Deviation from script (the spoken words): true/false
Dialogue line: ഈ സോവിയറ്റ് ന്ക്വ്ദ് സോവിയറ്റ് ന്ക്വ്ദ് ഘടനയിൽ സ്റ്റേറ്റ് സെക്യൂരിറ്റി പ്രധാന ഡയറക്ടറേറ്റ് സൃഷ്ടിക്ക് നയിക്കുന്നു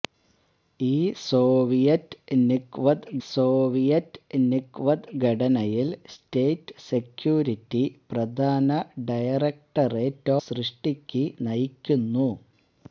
false